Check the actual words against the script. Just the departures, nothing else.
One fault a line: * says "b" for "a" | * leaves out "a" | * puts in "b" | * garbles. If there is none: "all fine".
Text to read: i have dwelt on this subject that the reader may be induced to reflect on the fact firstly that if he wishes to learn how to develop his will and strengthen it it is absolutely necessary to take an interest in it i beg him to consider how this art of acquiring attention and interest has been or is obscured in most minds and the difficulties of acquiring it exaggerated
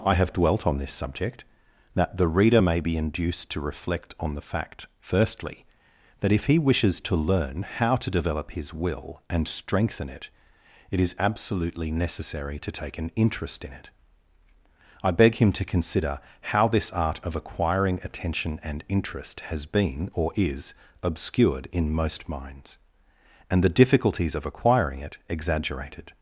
all fine